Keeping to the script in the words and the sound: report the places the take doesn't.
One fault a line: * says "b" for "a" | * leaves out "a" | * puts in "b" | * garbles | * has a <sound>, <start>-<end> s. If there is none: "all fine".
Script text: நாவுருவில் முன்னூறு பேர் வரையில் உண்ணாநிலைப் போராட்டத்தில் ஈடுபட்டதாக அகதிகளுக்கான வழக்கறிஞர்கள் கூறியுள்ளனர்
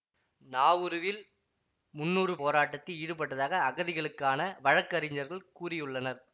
* leaves out "பேர் வரையில் உண்ணாநிலைப்"